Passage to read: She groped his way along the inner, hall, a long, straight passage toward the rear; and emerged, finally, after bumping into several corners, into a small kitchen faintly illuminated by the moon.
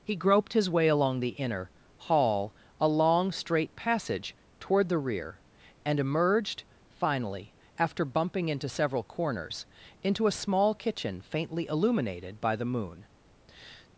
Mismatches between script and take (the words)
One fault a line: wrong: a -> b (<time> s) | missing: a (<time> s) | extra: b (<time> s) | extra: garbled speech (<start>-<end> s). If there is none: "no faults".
wrong: She -> He (0.0 s)